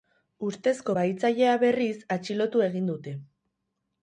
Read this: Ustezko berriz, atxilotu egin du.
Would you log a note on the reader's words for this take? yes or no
yes